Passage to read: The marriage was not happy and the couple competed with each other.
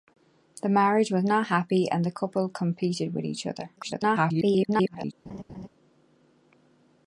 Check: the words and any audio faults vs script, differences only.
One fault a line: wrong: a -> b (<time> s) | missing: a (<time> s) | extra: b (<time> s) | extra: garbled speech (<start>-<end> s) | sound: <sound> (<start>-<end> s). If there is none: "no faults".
extra: garbled speech (3.8-5.1 s)
sound: laugh (5.3-5.7 s)